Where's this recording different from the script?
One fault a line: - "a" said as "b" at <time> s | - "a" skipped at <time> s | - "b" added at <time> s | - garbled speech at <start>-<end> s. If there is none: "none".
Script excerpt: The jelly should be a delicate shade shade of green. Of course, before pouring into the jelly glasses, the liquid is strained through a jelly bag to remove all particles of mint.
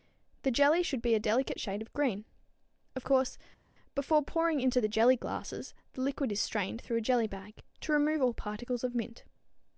- "shade" skipped at 1.8 s